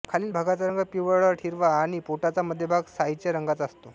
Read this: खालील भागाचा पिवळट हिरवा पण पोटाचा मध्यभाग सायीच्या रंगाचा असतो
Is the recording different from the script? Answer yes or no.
yes